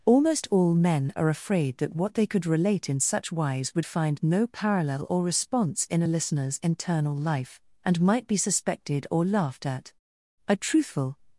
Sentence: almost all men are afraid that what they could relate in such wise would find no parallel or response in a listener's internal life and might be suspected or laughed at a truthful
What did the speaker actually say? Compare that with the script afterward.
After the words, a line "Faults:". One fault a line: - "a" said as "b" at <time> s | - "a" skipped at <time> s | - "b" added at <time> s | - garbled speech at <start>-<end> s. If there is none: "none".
almost all men are afraid that what they could relate in such wise would find no parallel or response in a listener's internal life and might be suspected or laughed at a truthful
Faults:
none